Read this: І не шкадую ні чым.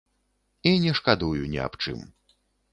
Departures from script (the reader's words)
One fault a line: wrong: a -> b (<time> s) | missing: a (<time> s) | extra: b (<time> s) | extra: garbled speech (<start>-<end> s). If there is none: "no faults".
extra: аб (1.7 s)